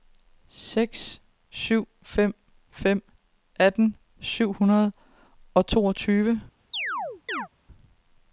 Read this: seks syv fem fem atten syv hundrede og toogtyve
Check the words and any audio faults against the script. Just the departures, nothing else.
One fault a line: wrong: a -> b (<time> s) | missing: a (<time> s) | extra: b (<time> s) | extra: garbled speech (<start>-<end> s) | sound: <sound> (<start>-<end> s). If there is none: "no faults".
sound: chirp (6.7-7.5 s)